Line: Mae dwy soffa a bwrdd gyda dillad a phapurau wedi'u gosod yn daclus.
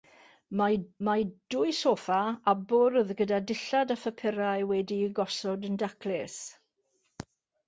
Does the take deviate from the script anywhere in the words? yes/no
yes